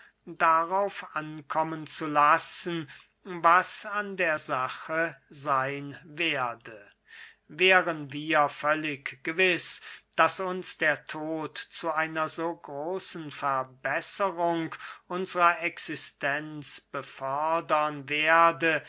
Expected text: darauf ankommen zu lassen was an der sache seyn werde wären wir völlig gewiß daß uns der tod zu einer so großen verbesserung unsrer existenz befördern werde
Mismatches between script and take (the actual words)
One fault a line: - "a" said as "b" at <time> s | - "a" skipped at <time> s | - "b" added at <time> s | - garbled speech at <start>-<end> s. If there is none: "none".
none